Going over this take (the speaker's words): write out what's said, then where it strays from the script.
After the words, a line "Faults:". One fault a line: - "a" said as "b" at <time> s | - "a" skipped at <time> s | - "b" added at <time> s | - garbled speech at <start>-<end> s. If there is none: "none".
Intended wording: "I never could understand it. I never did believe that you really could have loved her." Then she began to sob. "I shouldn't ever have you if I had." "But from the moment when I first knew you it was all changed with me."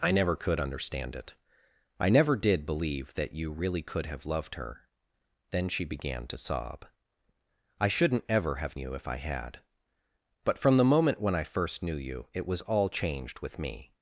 "I never could understand it. I never did believe that you really could have loved her." Then she began to sob. "I shouldn't ever have you if I had." "But from the moment when I first knew you it was all changed with me."
Faults:
none